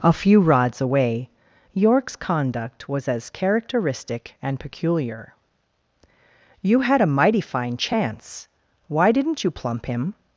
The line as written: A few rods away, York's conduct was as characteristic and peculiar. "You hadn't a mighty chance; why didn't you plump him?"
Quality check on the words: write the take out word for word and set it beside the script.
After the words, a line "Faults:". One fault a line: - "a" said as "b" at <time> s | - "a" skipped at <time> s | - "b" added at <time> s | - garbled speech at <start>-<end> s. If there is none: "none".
A few rods away, York's conduct was as characteristic and peculiar. "You had a mighty fine chance; why didn't you plump him?"
Faults:
- "hadn't" said as "had" at 6.8 s
- "fine" added at 7.4 s